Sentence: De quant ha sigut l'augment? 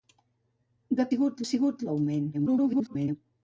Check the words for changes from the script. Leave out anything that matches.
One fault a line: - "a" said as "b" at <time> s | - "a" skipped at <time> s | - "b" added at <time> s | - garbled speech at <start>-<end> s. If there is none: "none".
- "quant" said as "sigut" at 1.1 s
- garbled speech at 2.3-3.2 s